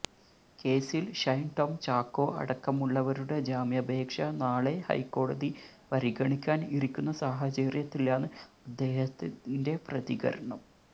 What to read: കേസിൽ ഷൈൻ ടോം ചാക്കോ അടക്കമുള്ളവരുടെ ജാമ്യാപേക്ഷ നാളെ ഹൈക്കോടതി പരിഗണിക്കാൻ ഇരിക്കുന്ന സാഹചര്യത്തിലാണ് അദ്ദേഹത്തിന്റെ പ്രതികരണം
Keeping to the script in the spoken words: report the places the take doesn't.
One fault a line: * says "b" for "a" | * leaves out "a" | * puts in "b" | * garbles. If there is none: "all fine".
all fine